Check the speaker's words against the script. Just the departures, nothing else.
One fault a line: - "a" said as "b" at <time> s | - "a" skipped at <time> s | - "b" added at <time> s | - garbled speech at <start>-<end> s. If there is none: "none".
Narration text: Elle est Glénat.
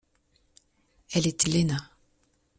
none